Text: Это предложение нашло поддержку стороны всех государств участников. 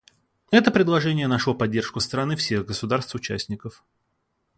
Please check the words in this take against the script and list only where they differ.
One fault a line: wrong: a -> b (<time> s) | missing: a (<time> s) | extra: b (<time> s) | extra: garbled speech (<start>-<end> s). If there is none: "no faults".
no faults